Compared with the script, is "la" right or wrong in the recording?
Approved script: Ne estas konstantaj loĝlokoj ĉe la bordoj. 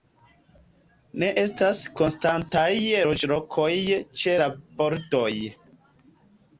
right